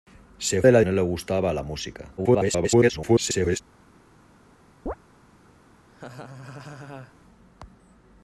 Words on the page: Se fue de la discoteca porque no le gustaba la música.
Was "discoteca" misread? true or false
true